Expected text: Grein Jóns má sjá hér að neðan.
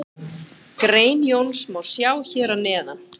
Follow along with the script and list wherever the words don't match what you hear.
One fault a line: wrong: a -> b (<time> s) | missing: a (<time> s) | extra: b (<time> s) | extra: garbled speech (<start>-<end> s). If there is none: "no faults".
no faults